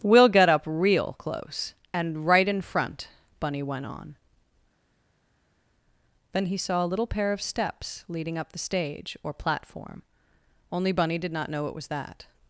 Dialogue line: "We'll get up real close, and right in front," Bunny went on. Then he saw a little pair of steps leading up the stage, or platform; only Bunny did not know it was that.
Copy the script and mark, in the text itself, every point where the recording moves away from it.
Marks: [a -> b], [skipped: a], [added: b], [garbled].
"We'll get up real close, and right in front," Bunny went on. Then he saw a little pair of steps leading up the stage, or platform; only Bunny did not know it was that.